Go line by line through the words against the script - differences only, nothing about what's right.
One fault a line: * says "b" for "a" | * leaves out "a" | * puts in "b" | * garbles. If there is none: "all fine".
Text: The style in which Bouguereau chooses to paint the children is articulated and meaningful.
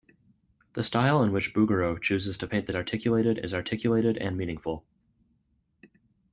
* says "articulated" for "children"